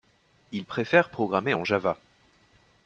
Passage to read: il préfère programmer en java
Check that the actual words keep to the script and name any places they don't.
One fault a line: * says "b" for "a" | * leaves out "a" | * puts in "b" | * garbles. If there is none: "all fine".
all fine